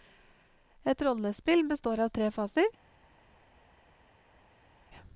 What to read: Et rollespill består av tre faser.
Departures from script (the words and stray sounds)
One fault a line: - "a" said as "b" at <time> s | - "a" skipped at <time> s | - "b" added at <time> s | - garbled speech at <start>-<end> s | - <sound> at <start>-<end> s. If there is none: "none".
none